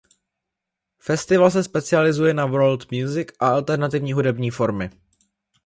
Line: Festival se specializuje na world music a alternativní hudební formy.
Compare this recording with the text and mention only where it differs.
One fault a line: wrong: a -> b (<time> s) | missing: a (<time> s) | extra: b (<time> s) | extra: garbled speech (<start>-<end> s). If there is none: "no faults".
no faults